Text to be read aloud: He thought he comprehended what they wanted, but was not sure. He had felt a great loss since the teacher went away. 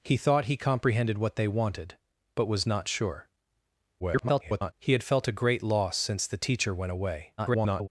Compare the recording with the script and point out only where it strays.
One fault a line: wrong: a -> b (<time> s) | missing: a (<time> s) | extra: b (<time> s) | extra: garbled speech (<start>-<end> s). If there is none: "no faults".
extra: garbled speech (4.0-4.7 s)
extra: garbled speech (7.4-7.9 s)